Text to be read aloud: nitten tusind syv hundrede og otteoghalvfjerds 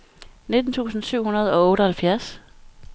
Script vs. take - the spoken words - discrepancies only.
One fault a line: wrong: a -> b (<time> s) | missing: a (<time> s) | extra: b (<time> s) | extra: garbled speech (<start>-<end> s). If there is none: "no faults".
no faults